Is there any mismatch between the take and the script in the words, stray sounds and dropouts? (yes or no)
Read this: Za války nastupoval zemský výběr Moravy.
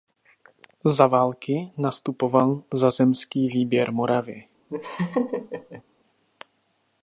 yes